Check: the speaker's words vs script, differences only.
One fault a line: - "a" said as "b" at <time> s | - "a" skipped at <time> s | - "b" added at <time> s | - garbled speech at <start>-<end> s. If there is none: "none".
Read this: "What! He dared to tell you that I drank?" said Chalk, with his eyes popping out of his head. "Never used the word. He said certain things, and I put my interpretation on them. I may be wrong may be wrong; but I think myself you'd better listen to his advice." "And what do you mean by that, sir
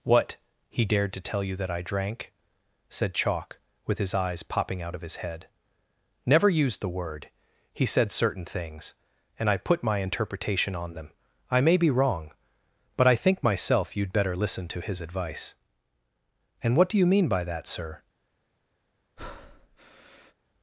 - "may be wrong" skipped at 12.3 s